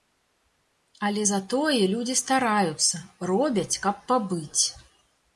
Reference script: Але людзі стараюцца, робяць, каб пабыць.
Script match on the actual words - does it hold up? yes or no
no